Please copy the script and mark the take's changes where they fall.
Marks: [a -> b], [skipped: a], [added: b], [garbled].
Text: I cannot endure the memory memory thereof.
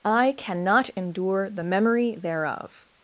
I cannot endure the memory [skipped: memory] thereof.